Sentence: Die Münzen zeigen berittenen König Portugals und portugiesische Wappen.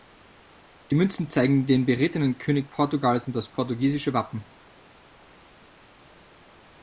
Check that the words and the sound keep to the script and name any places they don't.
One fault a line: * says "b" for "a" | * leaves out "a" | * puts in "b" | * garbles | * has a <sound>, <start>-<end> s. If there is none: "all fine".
* puts in "den"
* puts in "das"